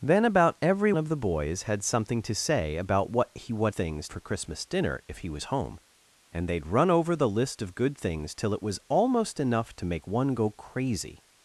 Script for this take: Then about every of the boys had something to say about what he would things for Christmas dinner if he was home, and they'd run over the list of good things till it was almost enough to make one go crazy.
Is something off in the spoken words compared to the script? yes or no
no